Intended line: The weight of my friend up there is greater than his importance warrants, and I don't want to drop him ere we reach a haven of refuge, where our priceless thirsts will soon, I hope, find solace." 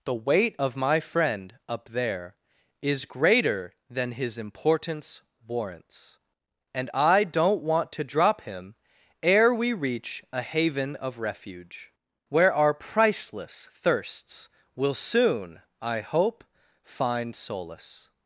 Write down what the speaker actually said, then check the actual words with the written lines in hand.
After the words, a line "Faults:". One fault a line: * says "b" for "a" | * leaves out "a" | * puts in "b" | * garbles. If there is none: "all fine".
The weight of my friend up there is greater than his importance warrants, and I don't want to drop him ere we reach a haven of refuge, where our priceless thirsts will soon, I hope, find solace."
Faults:
all fine